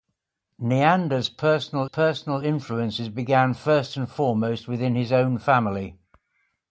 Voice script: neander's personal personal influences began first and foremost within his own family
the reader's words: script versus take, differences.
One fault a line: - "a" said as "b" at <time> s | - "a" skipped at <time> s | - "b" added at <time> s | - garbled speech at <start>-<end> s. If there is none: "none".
none